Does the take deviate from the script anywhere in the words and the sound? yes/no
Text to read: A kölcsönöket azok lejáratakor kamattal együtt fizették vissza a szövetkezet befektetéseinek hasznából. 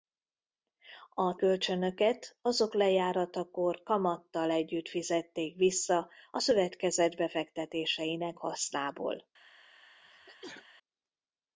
yes